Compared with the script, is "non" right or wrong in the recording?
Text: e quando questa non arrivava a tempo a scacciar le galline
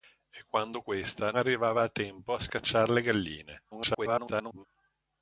wrong